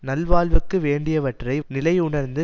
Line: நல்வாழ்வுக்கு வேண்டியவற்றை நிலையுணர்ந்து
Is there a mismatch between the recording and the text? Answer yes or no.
no